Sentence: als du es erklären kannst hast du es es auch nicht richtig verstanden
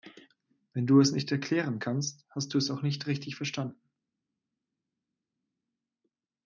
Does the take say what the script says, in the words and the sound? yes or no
no